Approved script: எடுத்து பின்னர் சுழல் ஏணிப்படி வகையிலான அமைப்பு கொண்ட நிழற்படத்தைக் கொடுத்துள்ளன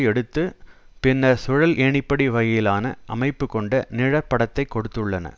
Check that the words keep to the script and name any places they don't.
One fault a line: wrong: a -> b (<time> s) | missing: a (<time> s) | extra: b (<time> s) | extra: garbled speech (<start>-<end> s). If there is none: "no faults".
no faults